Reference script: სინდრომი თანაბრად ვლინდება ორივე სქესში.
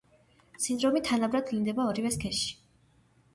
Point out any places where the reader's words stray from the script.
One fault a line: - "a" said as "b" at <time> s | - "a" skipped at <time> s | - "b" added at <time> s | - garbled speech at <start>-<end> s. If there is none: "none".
none